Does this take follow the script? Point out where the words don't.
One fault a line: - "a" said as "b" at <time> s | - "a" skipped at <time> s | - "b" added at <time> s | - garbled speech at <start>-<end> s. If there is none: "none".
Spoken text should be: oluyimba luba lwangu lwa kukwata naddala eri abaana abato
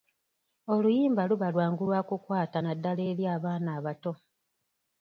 none